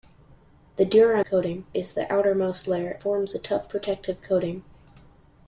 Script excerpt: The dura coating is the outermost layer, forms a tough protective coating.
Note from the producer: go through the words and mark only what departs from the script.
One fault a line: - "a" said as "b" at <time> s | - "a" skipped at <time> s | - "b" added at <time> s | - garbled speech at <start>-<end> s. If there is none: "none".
none